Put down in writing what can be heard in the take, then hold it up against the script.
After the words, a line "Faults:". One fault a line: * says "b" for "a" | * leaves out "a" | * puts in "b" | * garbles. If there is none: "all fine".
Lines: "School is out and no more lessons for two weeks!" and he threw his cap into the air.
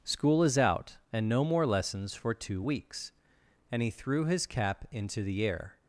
"School is out and no more lessons for two weeks!" and he threw his cap into the air.
Faults:
all fine